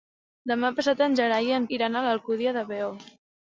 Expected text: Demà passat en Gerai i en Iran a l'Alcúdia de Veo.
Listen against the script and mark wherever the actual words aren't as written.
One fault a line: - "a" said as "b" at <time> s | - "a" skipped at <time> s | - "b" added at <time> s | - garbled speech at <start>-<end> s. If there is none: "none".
none